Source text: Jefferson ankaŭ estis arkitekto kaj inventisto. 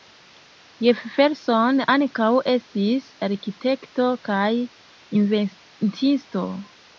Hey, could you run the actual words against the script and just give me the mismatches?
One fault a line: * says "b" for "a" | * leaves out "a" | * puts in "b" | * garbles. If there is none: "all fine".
all fine